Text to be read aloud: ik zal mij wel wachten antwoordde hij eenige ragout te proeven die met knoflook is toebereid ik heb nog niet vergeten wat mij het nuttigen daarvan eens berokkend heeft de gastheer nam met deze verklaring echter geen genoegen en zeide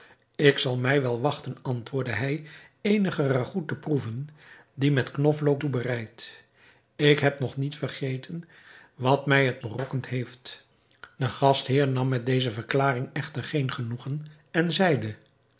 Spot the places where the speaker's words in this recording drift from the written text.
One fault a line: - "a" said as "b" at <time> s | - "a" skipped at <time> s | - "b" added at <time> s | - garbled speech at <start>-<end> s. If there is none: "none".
- "is" skipped at 5.6 s
- "nuttigen daarvan eens" skipped at 9.6 s